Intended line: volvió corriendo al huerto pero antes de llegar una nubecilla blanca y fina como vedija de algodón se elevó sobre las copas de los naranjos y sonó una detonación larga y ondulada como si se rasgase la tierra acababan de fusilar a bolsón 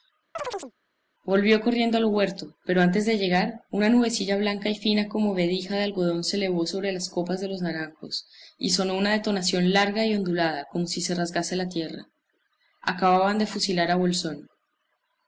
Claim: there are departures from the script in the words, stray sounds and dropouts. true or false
true